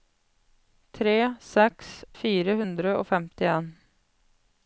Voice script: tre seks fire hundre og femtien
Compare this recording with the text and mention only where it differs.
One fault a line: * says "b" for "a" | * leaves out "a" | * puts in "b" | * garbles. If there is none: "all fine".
all fine